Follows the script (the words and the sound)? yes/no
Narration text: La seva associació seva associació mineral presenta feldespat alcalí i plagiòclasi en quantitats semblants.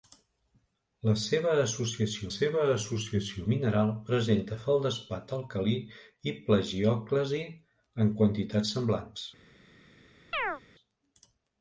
no